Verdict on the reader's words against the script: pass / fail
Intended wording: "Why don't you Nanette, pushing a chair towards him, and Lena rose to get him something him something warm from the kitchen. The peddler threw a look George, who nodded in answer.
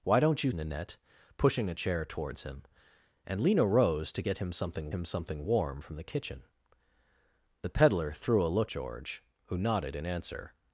pass